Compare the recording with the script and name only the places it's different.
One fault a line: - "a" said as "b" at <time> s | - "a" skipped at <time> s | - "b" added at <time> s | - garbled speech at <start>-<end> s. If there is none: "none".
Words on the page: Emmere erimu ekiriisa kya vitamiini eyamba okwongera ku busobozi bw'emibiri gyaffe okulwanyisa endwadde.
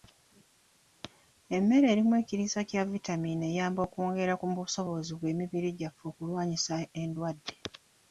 none